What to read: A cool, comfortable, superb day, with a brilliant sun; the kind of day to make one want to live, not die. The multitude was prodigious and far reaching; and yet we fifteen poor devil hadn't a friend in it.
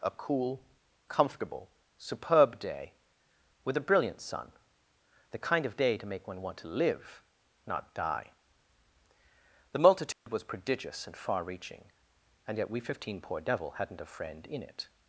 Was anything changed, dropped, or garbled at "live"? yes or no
no